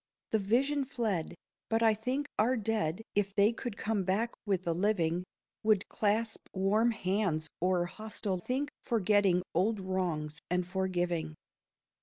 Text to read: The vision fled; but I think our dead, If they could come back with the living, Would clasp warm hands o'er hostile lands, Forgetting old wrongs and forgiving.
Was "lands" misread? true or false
true